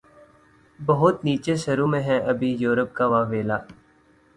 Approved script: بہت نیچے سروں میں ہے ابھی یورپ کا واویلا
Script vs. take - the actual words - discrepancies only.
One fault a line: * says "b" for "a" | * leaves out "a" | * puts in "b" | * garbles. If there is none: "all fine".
all fine